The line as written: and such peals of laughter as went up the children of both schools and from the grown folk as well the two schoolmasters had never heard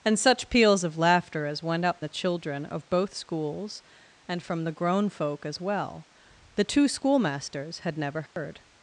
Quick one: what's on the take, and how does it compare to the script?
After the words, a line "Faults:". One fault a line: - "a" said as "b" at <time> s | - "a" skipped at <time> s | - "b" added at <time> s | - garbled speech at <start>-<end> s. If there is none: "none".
and such peals of laughter as went up the children of both schools and from the grown folk as well the two schoolmasters had never heard
Faults:
none